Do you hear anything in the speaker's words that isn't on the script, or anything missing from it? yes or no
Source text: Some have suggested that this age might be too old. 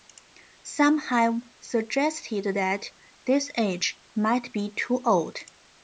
no